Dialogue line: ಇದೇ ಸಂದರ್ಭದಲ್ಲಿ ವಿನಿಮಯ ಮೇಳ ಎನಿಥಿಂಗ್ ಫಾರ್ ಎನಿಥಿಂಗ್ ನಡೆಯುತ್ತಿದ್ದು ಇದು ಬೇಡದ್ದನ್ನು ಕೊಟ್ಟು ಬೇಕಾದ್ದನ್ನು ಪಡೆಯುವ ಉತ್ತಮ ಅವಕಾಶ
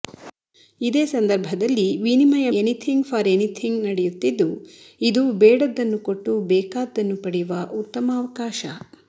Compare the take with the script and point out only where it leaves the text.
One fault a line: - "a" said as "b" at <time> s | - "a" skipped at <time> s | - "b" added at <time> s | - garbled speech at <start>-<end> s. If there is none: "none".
- "ಮೇಳ" skipped at 2.5 s